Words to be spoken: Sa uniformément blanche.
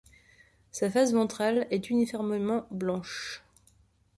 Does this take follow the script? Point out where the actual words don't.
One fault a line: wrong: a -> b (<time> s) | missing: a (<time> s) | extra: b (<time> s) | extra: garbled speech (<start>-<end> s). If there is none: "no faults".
extra: face ventrale est (0.9 s)